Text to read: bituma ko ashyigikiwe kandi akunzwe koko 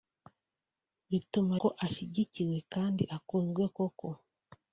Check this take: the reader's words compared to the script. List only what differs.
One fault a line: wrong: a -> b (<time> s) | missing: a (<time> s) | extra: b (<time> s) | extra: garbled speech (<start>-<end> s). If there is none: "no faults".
no faults